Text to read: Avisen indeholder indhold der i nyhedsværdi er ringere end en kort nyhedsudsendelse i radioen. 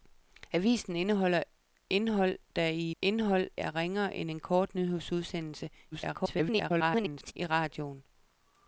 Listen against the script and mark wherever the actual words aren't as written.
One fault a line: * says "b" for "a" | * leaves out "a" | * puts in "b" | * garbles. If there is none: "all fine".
* says "indhold" for "nyhedsværdi"
* garbles